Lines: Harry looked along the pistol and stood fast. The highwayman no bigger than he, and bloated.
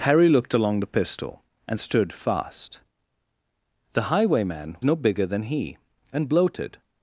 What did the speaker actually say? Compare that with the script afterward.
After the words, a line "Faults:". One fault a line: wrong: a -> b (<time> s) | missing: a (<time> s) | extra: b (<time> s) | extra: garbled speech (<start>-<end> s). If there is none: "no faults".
Harry looked along the pistol and stood fast. The highwayman no bigger than he, and bloated.
Faults:
no faults